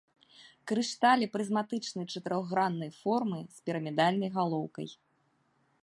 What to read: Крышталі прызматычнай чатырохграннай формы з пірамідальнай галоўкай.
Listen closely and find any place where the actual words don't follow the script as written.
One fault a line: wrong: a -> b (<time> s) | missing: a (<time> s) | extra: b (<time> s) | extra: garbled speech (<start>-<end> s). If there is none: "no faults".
no faults